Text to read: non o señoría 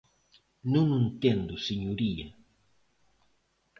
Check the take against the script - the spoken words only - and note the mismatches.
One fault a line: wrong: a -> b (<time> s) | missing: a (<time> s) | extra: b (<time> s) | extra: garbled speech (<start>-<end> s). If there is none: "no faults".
extra: entendo (1.1 s)